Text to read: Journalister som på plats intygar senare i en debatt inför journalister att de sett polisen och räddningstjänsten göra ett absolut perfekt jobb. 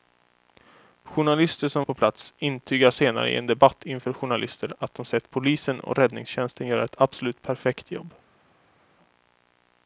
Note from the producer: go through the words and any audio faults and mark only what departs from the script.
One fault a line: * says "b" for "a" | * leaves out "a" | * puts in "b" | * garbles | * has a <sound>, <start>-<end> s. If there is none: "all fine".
all fine